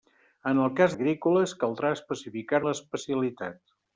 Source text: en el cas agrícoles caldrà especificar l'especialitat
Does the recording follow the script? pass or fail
pass